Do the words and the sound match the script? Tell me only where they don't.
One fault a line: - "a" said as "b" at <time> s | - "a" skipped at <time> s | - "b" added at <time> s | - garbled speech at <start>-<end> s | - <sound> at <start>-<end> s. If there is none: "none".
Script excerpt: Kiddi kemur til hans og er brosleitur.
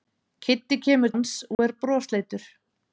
- "til" skipped at 1.1 s
- dropout at 1.5-1.6 s